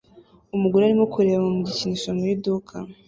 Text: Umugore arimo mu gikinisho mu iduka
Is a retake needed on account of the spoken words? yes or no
yes